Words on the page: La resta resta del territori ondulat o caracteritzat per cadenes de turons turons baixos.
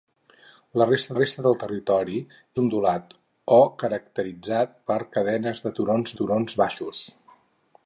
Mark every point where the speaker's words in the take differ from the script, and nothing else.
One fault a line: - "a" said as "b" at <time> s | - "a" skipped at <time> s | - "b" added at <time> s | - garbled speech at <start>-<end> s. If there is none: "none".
none